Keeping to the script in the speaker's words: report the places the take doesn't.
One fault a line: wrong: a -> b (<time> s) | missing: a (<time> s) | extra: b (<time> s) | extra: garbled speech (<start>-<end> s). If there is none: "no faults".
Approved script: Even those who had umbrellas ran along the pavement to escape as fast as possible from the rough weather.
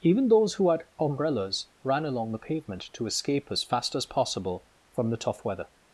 wrong: rough -> tough (5.2 s)